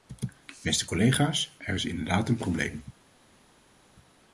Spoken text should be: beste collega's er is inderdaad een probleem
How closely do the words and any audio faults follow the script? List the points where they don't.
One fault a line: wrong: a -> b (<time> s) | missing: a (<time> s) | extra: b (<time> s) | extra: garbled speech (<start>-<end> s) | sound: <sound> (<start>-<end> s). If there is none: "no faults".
no faults